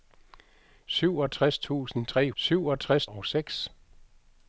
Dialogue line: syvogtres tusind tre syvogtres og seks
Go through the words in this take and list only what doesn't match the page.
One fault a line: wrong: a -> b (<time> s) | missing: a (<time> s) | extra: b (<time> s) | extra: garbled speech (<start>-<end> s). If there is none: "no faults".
no faults